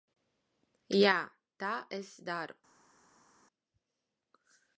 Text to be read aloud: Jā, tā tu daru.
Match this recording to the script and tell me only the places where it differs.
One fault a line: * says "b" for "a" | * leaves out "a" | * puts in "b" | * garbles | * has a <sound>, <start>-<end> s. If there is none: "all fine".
* says "es" for "tu"